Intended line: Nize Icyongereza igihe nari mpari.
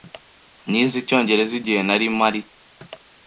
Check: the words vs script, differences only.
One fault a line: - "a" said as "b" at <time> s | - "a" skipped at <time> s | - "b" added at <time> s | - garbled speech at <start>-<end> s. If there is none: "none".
none